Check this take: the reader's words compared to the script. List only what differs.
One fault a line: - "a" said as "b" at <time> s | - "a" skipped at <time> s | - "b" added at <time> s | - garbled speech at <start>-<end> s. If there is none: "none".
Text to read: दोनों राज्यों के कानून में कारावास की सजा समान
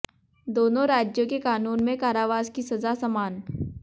none